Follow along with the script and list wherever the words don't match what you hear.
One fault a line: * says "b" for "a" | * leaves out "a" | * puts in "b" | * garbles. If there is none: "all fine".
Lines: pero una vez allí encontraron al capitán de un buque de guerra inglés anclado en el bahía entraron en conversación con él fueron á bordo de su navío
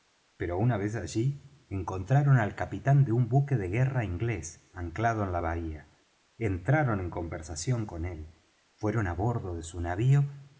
* says "la" for "el"